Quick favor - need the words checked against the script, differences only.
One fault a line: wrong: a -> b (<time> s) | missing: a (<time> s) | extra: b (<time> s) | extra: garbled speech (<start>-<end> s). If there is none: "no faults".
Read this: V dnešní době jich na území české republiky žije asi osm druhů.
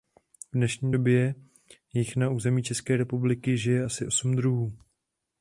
no faults